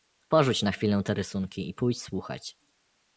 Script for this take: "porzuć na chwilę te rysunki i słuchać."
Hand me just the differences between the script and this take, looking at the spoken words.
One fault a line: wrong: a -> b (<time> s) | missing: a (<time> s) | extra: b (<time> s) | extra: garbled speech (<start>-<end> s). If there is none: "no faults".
extra: pójdź (1.7 s)